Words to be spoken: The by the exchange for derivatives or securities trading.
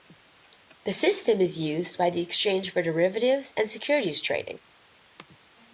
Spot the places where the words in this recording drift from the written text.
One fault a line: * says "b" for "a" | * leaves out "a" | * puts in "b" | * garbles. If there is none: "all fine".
* puts in "system is used"
* says "and" for "or"